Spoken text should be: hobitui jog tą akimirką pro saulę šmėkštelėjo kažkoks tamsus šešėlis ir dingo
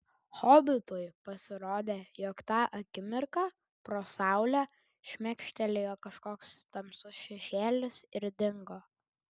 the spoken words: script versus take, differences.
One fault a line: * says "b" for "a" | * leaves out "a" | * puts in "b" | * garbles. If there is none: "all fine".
* puts in "pasirodė"